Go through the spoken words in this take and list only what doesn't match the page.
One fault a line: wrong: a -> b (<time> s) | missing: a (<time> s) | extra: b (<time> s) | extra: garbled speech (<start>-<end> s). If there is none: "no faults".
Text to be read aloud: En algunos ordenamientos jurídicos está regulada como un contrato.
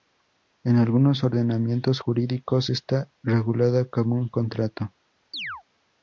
no faults